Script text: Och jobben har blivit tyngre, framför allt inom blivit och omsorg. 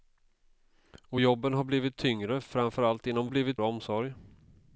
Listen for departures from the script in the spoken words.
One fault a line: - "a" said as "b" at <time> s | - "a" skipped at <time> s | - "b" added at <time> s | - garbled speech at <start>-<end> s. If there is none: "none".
none